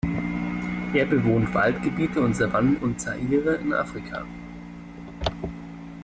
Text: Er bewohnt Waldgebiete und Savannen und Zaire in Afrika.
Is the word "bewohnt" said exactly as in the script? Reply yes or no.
yes